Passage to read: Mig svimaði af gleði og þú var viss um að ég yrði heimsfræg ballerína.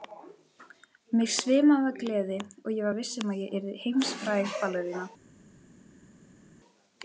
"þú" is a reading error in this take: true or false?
true